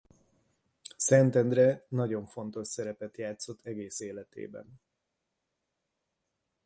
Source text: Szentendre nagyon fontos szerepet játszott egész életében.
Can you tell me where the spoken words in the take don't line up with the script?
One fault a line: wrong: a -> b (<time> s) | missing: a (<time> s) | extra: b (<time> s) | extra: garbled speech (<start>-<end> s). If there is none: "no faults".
no faults